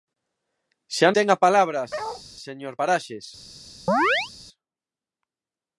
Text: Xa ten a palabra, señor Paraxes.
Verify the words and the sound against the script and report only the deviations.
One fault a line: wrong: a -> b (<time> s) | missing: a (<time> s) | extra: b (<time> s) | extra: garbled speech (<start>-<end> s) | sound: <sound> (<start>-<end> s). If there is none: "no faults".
sound: bark (1.9-2.2 s)
sound: chirp (3.9-4.3 s)